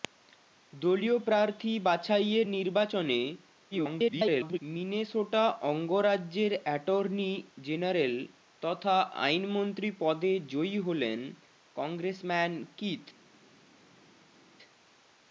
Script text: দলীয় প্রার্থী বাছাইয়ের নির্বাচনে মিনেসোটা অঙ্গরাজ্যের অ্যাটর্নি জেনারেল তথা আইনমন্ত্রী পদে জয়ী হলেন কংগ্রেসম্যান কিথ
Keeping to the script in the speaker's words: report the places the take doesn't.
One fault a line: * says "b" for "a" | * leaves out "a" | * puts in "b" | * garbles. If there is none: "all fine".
* garbles